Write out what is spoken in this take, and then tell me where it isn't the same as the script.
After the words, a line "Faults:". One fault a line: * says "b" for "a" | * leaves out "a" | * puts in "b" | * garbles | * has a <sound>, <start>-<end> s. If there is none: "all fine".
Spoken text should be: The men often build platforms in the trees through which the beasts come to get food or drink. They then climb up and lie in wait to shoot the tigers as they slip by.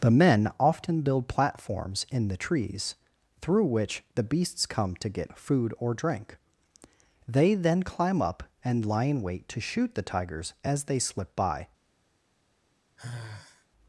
The men often build platforms in the trees through which the beasts come to get food or drink. They then climb up and lie in wait to shoot the tigers as they slip by.
Faults:
* has a sigh, 13.0-13.7 s